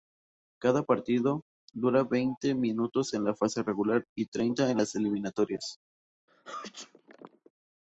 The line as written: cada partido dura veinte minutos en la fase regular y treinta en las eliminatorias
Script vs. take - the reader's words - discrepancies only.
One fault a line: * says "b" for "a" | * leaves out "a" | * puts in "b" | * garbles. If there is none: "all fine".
all fine